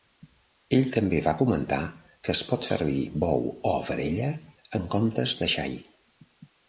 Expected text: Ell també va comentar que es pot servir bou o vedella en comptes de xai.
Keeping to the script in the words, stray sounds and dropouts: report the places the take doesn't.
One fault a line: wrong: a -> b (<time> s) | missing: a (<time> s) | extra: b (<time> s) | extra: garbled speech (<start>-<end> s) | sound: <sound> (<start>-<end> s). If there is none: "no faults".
no faults